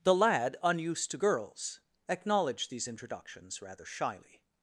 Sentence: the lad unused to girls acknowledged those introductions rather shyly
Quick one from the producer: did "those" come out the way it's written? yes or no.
no